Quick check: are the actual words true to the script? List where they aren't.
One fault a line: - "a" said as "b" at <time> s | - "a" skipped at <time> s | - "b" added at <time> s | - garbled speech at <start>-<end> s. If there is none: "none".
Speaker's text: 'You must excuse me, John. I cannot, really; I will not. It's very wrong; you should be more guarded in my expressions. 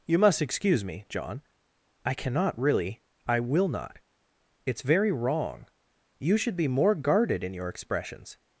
- "my" said as "your" at 7.5 s